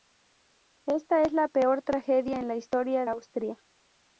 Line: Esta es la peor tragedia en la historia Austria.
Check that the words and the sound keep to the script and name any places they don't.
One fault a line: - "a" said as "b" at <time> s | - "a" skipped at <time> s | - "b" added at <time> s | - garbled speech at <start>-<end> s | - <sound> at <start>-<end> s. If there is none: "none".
none